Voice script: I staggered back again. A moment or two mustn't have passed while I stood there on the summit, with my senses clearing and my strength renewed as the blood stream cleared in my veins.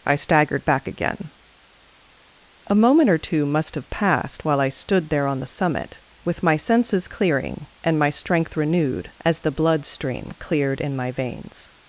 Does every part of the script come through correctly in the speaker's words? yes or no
no